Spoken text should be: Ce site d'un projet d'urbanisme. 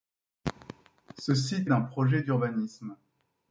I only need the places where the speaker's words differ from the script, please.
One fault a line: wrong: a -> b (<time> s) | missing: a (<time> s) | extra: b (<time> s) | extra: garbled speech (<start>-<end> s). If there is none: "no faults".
no faults